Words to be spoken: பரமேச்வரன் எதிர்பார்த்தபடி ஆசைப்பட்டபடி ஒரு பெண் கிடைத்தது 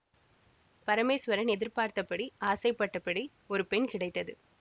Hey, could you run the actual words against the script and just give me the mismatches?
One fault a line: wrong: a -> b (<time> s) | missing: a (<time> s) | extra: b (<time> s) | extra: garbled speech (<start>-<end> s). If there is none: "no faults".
no faults